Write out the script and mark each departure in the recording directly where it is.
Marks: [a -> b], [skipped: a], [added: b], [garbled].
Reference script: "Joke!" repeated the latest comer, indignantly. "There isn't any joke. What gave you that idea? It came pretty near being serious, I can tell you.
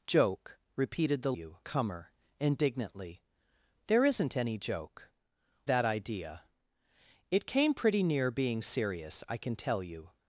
"Joke!" repeated the [latest -> you] comer, indignantly. "There isn't any joke. [skipped: What gave you] that idea? It came pretty near being serious, I can tell you.